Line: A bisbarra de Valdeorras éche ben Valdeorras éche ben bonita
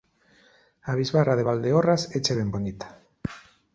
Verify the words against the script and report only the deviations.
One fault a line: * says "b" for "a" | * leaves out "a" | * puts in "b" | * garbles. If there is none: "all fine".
* leaves out "Valdeorras éche ben"